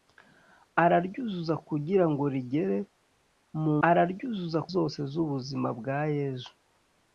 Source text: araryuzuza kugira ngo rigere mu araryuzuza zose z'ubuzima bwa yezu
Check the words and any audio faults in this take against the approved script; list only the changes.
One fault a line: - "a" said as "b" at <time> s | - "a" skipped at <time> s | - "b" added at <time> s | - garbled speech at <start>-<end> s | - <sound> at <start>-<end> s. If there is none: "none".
none